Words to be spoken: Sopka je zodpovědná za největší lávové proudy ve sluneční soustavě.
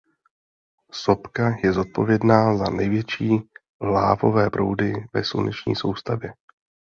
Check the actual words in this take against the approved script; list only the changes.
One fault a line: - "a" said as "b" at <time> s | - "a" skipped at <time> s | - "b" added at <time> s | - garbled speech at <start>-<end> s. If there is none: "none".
none